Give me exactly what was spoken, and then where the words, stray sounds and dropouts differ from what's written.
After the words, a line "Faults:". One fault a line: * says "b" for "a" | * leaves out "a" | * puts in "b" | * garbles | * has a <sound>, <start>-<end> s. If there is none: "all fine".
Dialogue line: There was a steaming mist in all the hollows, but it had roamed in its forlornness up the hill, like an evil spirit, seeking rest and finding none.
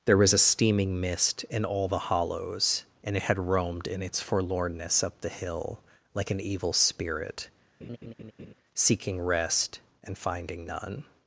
There was a steaming mist in all the hollows, and it had roamed in its forlornness up the hill, like an evil spirit, seeking rest and finding none.
Faults:
* says "and" for "but"
* has a laugh, 7.8-8.5 s